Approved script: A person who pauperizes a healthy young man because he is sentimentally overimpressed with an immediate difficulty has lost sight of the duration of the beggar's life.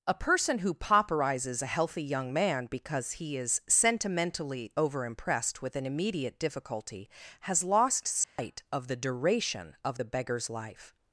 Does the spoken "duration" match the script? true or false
true